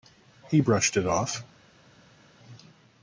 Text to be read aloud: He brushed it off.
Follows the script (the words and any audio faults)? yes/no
yes